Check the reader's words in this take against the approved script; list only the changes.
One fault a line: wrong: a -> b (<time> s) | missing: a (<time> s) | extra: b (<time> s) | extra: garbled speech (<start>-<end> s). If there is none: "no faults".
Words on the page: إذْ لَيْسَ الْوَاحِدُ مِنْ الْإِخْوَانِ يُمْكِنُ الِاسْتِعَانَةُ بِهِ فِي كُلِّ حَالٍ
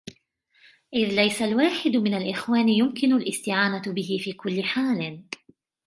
no faults